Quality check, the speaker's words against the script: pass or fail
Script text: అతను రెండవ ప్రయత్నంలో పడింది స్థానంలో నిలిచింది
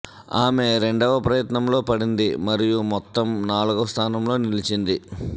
fail